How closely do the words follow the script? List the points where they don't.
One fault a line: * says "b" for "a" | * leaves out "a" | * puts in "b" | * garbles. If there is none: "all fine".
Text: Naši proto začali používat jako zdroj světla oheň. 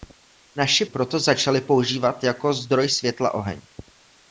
all fine